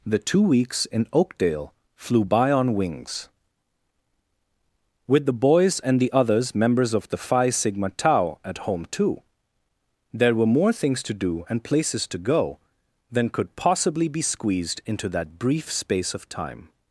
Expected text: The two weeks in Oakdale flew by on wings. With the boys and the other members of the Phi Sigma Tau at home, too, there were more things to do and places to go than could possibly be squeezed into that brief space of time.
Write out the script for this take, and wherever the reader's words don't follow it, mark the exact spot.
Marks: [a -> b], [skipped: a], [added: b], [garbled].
The two weeks in Oakdale flew by on wings. With the boys and the [other -> others] members of the Phi Sigma Tau at home, too, there were more things to do and places to go than could possibly be squeezed into that brief space of time.